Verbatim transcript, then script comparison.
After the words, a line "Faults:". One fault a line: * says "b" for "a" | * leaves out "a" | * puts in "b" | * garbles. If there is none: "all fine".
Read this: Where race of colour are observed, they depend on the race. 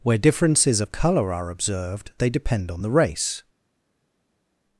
Where differences of colour are observed, they depend on the race.
Faults:
* says "differences" for "race"